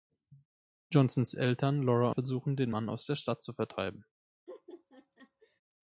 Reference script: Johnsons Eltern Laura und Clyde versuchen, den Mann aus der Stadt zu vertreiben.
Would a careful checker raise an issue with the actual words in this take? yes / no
yes